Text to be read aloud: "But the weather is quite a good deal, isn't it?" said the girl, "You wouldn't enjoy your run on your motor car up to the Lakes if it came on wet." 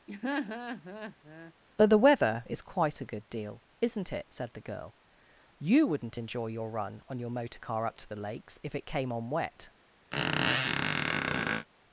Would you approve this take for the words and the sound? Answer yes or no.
no